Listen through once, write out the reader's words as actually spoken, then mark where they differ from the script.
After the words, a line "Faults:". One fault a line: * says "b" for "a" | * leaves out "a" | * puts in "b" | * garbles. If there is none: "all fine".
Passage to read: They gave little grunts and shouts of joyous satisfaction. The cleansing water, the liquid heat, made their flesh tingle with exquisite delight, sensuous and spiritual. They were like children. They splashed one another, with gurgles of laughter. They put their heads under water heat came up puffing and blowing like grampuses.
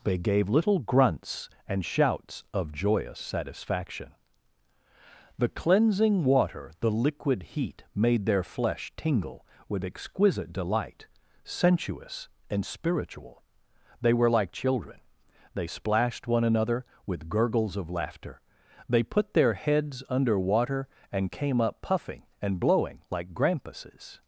They gave little grunts and shouts of joyous satisfaction. The cleansing water, the liquid heat, made their flesh tingle with exquisite delight, sensuous and spiritual. They were like children. They splashed one another, with gurgles of laughter. They put their heads under water and came up puffing and blowing like grampuses.
Faults:
* says "and" for "heat"